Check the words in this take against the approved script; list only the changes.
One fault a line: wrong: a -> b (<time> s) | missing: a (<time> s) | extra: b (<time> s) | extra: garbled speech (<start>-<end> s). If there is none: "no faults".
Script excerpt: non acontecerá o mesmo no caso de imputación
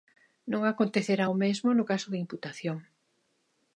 no faults